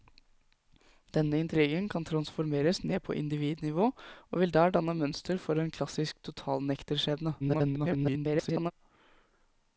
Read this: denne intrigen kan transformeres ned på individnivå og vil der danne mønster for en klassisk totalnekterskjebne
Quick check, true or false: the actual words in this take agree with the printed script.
false